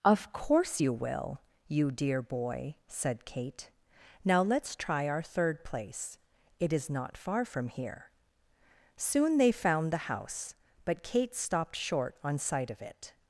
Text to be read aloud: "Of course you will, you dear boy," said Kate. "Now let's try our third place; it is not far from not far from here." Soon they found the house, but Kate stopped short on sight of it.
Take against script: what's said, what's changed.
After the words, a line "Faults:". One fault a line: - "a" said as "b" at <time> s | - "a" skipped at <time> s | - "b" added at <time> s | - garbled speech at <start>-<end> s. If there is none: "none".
"Of course you will, you dear boy," said Kate. "Now let's try our third place; it is not far from here." Soon they found the house, but Kate stopped short on sight of it.
Faults:
- "not far from" skipped at 7.7 s